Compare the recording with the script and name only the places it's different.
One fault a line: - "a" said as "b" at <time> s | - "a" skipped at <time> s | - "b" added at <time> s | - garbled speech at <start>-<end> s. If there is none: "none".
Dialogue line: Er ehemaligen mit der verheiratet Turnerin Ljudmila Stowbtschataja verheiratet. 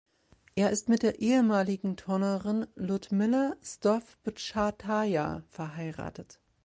- "ehemaligen" said as "ist" at 0.7 s
- "verheiratet" said as "ehemaligen" at 1.2 s